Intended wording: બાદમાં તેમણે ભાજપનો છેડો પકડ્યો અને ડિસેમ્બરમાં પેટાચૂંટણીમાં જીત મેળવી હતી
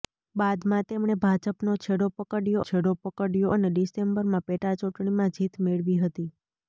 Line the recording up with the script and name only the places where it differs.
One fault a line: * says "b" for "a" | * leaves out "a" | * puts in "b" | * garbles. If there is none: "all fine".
* puts in "છેડો પકડ્યો"